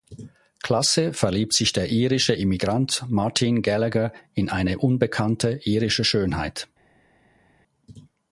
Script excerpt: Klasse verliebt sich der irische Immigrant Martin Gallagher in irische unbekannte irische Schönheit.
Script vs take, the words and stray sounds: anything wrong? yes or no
yes